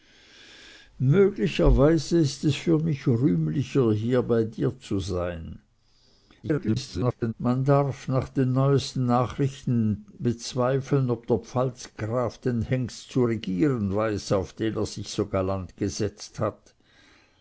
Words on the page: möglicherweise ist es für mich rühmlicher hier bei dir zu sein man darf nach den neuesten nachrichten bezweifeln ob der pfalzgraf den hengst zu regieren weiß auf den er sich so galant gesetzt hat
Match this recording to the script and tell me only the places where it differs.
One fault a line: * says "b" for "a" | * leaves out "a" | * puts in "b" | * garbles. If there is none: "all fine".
* garbles